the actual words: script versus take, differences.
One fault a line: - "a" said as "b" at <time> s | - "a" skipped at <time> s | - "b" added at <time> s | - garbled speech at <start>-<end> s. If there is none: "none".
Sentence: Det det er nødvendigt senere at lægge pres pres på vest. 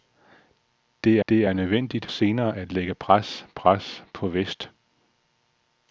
none